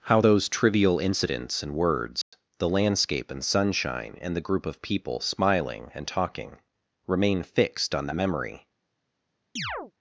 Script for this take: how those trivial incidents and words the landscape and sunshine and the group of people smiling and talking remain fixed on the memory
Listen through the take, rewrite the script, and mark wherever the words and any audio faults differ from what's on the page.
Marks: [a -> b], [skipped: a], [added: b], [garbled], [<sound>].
how those trivial incidents and words [dropout] the landscape and sunshine and the group of people smiling and talking remain fixed on the memory [chirp]